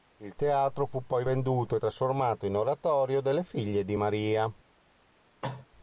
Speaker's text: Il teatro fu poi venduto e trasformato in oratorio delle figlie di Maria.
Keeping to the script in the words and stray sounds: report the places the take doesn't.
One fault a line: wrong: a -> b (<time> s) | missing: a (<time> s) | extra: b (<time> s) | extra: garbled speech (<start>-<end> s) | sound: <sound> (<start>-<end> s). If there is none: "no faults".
sound: cough (5.4-5.7 s)